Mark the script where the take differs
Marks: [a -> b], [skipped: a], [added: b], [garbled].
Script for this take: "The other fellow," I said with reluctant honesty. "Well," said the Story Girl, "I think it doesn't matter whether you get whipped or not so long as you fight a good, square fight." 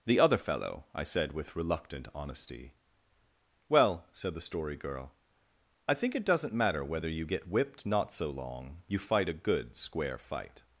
"The other fellow," I said with reluctant honesty. "Well," said the Story Girl, "I think it doesn't matter whether you get whipped [skipped: or] not so long [skipped: as] you fight a good, square fight."